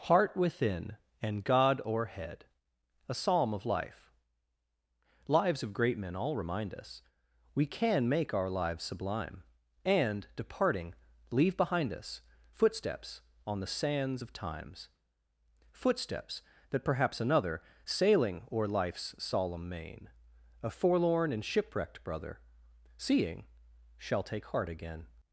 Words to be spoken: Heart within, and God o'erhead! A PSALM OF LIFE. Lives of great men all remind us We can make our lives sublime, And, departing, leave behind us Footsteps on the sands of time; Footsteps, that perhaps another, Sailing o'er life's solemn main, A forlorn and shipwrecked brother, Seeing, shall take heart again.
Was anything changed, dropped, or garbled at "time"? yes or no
yes